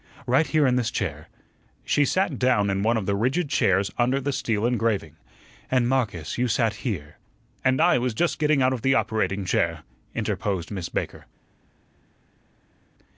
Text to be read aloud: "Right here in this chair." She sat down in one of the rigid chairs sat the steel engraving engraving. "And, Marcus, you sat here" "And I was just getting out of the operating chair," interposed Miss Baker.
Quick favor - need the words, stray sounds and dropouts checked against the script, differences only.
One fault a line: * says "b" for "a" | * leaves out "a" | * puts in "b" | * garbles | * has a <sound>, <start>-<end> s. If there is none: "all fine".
* says "under" for "sat"
* leaves out "engraving"